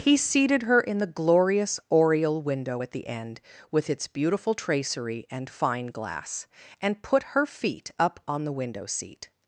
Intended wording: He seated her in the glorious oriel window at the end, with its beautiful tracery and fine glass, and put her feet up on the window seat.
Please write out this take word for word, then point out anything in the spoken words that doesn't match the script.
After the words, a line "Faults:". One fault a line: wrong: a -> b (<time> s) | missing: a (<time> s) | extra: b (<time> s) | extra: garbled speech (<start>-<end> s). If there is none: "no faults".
He seated her in the glorious oriel window at the end, with its beautiful tracery and fine glass, and put her feet up on the window seat.
Faults:
no faults